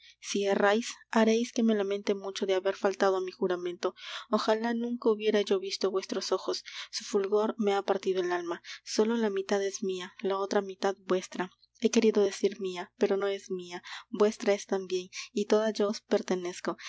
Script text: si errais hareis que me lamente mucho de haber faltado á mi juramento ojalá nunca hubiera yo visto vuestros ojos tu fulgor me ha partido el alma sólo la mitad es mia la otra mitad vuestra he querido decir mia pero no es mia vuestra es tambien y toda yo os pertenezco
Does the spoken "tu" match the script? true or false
false